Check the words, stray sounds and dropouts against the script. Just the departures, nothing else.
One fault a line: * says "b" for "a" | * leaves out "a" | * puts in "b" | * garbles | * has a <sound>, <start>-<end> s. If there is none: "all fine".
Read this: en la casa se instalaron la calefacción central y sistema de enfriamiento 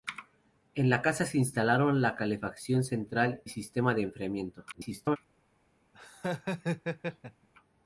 * leaves out "y"
* garbles
* has a laugh, 5.9-7.5 s